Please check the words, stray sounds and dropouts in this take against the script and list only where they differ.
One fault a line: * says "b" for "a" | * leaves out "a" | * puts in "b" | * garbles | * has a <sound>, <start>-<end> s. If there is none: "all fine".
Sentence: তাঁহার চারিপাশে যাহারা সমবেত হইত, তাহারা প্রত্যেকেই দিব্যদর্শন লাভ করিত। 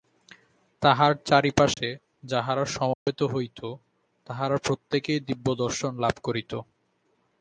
* has a dropout, 1.7-1.8 s
* has a dropout, 2.9-3.1 s